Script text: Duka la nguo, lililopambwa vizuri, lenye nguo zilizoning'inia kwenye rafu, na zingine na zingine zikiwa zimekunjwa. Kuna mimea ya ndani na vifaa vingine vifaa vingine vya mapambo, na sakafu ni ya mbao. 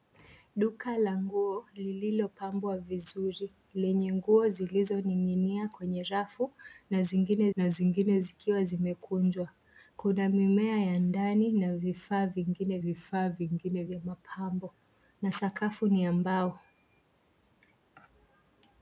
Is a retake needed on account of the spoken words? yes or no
no